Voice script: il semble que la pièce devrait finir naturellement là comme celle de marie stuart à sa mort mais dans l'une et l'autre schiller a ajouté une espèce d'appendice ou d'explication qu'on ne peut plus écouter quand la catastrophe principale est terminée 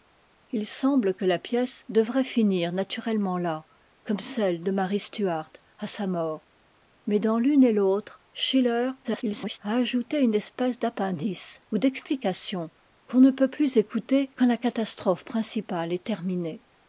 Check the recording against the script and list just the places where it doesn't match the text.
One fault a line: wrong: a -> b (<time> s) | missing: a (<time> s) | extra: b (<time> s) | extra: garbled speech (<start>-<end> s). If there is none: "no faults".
extra: garbled speech (9.0-9.6 s)